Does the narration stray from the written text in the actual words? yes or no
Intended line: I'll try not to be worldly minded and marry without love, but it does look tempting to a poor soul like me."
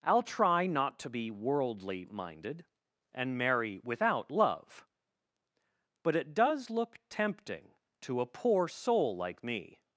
no